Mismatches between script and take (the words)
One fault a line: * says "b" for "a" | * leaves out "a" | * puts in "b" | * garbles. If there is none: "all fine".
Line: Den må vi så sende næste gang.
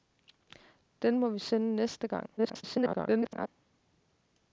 * leaves out "så"
* garbles